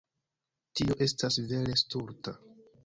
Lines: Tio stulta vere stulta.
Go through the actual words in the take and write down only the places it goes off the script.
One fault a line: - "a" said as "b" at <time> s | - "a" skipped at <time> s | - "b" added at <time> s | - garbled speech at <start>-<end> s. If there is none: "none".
- "stulta" said as "estas" at 1.1 s